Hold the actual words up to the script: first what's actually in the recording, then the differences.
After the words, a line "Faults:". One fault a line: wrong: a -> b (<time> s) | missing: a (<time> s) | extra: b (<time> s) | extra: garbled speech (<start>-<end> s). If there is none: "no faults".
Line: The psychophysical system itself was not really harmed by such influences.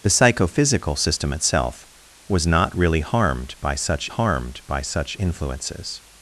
The psychophysical system itself was not really harmed by such harmed by such influences.
Faults:
extra: harmed by such (4.1 s)